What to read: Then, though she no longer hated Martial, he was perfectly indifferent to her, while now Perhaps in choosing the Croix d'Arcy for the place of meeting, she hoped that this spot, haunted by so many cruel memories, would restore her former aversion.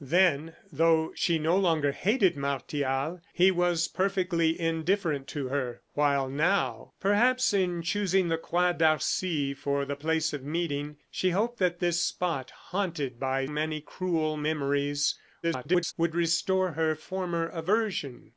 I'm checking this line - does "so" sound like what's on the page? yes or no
no